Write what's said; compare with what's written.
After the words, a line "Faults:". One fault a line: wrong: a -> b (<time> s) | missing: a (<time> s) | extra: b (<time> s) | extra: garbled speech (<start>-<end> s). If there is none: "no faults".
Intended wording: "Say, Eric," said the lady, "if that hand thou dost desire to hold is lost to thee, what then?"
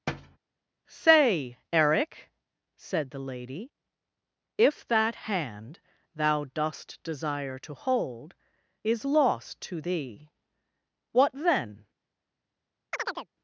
"Say, Eric," said the lady, "if that hand thou dost desire to hold is lost to thee, what then?"
Faults:
no faults